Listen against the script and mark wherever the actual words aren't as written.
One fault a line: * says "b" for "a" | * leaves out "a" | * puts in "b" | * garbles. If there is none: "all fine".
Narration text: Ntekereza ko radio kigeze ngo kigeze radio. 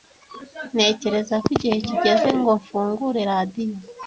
* says "igihe" for "radio"
* says "mfungure" for "kigeze"